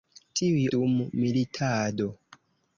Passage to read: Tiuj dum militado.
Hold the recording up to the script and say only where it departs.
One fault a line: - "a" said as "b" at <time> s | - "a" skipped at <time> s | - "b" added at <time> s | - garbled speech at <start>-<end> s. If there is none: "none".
none